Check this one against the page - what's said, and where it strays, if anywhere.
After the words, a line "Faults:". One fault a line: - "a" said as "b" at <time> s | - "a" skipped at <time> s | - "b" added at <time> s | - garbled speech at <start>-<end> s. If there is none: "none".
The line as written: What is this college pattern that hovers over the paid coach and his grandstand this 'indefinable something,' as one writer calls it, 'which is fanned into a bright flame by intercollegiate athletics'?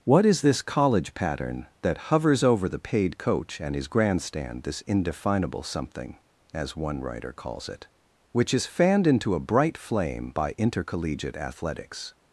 What is this college pattern that hovers over the paid coach and his grandstand this 'indefinable something,' as one writer calls it, 'which is fanned into a bright flame by intercollegiate athletics'?
Faults:
none